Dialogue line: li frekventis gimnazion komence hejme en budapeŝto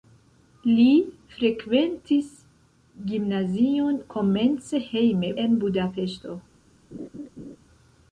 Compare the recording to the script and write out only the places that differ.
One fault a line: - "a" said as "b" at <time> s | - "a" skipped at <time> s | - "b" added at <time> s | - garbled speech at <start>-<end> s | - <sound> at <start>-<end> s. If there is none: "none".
- laugh at 6.9-7.6 s